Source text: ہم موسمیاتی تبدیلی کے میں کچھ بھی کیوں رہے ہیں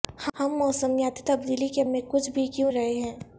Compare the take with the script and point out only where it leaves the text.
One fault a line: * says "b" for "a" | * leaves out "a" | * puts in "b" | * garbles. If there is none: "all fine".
all fine